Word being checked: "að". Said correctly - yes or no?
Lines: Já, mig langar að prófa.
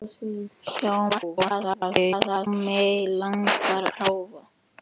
no